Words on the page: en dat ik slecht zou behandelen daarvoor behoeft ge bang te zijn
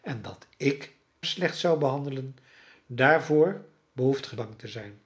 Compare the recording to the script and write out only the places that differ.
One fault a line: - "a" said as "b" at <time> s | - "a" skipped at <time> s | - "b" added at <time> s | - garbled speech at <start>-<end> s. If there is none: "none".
none